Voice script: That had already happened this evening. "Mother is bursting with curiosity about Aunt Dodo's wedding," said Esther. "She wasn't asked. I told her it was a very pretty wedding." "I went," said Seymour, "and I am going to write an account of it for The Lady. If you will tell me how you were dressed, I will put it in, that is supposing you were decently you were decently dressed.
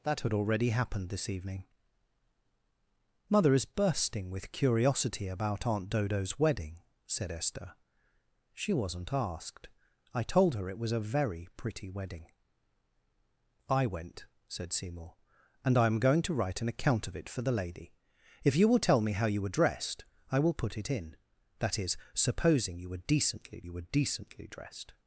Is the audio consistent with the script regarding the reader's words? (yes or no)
yes